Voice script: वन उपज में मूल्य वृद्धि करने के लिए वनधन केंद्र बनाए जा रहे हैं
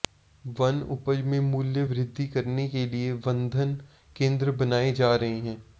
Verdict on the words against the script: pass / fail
pass